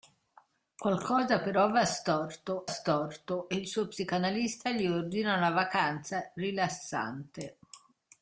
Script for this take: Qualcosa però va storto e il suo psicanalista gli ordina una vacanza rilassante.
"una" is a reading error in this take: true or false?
false